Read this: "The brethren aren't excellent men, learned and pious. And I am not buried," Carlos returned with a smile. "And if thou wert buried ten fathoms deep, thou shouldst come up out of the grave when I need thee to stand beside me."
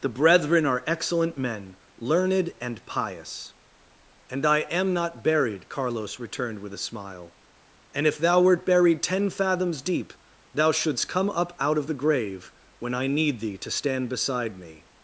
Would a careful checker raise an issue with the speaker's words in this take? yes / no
yes